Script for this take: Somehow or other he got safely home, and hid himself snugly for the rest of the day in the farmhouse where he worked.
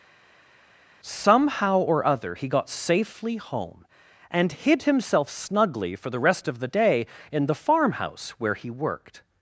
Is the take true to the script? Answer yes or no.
yes